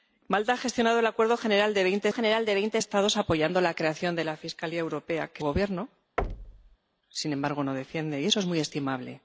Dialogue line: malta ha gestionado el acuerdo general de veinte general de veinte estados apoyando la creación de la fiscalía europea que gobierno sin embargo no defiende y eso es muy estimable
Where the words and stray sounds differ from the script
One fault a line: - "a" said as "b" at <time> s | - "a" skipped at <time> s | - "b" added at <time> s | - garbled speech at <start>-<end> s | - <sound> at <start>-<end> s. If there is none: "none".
- thud at 6.2-6.8 s